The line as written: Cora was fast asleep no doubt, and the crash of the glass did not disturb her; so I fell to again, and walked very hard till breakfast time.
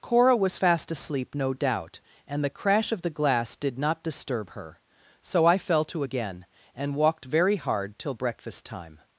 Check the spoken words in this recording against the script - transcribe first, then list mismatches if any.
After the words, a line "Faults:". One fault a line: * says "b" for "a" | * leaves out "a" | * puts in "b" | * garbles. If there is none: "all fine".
Cora was fast asleep no doubt, and the crash of the glass did not disturb her; so I fell to again, and walked very hard till breakfast time.
Faults:
all fine